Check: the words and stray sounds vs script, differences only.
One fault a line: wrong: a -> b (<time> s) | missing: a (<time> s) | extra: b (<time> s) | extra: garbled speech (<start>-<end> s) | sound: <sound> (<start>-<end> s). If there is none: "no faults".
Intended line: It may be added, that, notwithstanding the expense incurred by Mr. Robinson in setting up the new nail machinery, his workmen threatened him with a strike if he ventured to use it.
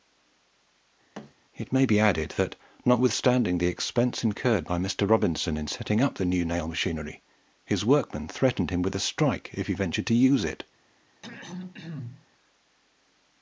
sound: thud (1.1-1.3 s)
sound: throat clearing (11.2-12.3 s)